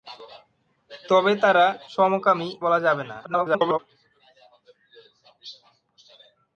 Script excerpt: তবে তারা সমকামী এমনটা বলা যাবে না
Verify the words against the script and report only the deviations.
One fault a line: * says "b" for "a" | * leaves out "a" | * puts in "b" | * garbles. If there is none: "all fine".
* leaves out "এমনটা"
* garbles